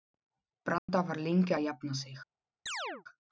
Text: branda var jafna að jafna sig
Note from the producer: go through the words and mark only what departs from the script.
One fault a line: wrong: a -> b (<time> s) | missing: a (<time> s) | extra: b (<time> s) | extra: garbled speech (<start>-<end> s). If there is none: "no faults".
wrong: jafna -> lengi (1.3 s)